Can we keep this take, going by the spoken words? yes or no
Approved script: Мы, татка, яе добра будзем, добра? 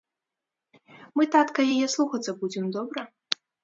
no